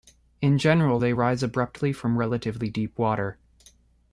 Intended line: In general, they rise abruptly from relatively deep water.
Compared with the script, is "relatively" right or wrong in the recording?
right